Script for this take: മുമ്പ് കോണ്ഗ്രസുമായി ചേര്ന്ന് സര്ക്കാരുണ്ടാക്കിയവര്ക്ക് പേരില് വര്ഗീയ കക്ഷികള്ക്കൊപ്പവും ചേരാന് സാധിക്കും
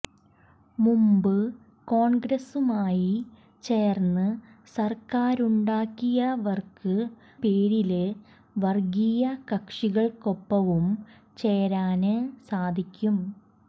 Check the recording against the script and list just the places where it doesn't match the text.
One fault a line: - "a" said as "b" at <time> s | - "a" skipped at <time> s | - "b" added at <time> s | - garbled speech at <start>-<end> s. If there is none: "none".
none